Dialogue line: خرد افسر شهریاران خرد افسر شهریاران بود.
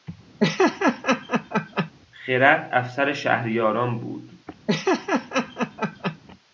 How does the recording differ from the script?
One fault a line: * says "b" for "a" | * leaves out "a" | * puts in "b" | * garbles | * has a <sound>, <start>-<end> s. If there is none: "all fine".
* has a laugh, 0.4-1.9 s
* leaves out "خرد افسر شهریاران"
* has a laugh, 4.7-6.2 s